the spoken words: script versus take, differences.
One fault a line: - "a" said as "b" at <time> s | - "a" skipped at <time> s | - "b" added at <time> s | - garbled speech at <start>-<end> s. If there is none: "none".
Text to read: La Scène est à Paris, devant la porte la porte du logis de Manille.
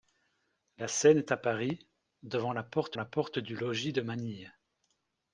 none